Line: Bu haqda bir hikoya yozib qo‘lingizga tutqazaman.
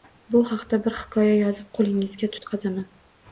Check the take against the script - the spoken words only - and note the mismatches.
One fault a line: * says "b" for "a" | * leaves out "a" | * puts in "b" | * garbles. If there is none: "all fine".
all fine